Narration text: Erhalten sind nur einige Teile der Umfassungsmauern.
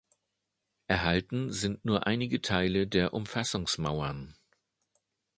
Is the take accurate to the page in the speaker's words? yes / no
yes